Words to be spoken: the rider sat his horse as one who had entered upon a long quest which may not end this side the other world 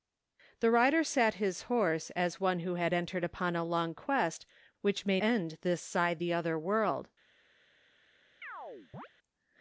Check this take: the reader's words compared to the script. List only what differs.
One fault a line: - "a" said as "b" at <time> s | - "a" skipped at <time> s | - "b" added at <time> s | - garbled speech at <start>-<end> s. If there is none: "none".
- "not" skipped at 5.2 s